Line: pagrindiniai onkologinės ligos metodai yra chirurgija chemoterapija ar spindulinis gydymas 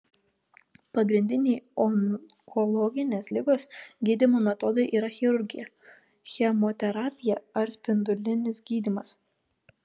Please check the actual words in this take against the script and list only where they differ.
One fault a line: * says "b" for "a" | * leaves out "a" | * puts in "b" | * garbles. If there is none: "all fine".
* puts in "gydymo"